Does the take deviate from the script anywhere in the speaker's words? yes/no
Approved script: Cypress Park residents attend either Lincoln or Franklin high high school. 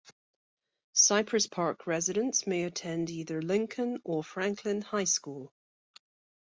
yes